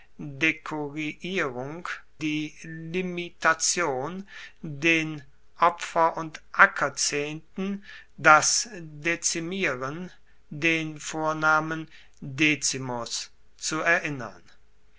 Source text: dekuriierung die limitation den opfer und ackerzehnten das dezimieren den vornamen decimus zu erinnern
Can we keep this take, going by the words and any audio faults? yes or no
yes